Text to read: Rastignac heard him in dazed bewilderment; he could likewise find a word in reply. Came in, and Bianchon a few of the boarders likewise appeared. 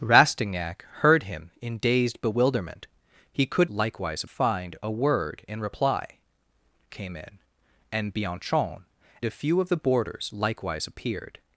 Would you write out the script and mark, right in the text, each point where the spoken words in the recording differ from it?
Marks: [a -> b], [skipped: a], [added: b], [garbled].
Rastignac heard him in dazed bewilderment; he could likewise find a word in reply. Came in, and Bianchon a few of the boarders likewise appeared.